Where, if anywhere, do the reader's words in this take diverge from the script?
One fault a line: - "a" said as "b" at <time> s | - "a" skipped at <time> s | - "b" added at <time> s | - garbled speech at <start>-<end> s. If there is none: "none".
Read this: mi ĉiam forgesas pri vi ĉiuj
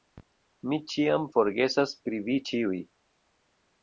none